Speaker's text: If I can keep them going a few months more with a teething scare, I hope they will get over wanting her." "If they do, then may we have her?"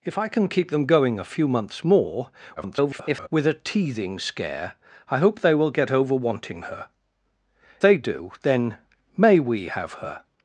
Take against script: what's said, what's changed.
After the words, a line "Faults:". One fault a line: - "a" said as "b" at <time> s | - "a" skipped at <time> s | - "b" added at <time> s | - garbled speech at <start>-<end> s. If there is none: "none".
If I can keep them going a few months more [garbled] with a teething scare, I hope they will get over wanting her." "They do, then may we have her?"
Faults:
- garbled speech at 2.6-3.3 s
- "If" skipped at 6.9 s